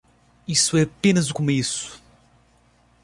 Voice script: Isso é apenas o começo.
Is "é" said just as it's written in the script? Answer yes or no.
yes